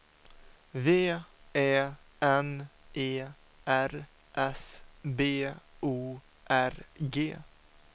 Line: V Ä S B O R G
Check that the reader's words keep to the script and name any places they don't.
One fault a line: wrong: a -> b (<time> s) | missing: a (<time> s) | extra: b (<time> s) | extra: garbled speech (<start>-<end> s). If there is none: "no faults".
extra: N E R (2.2 s)